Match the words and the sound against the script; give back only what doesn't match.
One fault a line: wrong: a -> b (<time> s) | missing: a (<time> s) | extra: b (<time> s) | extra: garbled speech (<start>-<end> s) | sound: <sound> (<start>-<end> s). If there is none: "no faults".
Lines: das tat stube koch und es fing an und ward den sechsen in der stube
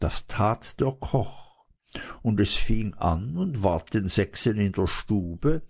wrong: stube -> der (0.8 s)